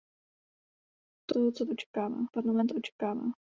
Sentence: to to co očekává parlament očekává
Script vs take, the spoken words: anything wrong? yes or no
no